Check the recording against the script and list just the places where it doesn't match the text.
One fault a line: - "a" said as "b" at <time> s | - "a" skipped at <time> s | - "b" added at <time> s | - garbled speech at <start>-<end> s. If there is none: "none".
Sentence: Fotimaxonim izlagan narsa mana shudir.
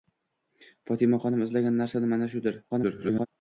- garbled speech at 2.7-3.3 s